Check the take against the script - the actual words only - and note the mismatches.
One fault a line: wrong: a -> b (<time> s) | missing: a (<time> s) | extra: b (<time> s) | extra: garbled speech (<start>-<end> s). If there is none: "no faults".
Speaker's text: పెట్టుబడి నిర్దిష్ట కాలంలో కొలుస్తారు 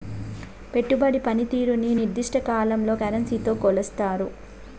extra: పనితీరుని (1.2 s)
extra: కరెన్సీతో (3.0 s)